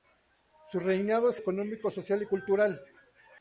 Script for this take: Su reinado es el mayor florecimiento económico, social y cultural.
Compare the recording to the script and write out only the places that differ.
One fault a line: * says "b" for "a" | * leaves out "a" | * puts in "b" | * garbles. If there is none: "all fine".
* leaves out "el mayor florecimiento"